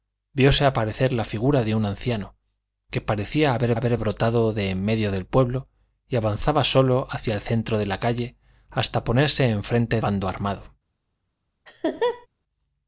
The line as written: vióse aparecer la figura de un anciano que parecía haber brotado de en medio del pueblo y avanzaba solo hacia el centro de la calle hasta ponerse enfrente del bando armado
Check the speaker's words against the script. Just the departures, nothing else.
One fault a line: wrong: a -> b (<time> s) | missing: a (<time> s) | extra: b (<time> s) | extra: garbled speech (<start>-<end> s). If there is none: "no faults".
extra: haber (3.8 s)
missing: del (10.0 s)